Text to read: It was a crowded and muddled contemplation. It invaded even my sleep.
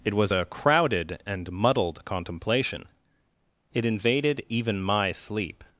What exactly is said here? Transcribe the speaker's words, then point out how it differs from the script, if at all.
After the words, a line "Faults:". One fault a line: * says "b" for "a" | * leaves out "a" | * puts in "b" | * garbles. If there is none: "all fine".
It was a crowded and muddled contemplation. It invaded even my sleep.
Faults:
all fine